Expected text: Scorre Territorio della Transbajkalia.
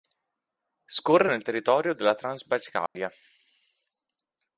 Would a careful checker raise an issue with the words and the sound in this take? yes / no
yes